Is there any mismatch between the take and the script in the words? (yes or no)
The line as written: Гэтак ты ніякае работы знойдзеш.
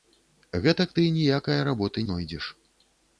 no